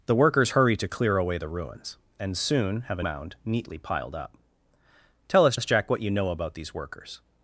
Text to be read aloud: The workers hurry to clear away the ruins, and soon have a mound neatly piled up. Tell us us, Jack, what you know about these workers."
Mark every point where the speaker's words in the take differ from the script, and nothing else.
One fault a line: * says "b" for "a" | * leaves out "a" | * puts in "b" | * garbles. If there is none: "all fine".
all fine